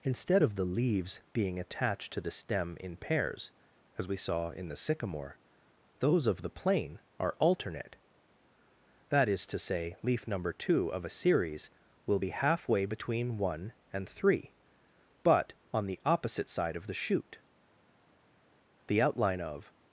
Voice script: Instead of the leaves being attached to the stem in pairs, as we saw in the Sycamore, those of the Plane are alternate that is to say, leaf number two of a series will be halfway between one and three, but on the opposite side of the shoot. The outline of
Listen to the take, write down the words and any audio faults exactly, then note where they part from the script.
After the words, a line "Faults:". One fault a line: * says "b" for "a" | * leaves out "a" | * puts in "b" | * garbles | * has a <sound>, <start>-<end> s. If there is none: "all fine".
Instead of the leaves being attached to the stem in pairs, as we saw in the Sycamore, those of the Plane are alternate that is to say, leaf number two of a series will be halfway between one and three, but on the opposite side of the shoot. The outline of
Faults:
all fine